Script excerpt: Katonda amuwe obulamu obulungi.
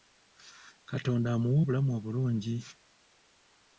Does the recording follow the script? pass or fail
pass